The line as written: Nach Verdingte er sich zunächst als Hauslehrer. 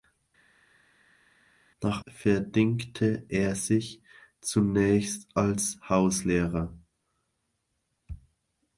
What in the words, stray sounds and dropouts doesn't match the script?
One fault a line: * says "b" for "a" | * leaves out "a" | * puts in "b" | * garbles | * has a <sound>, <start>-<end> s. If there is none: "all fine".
all fine